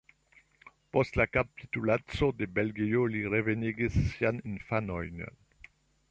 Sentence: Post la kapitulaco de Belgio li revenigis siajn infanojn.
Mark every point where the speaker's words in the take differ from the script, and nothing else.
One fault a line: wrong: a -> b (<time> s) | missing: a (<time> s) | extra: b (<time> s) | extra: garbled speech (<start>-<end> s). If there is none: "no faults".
no faults